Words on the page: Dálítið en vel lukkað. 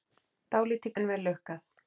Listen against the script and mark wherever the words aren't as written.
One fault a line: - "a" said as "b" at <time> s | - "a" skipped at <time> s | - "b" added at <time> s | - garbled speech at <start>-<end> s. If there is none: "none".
none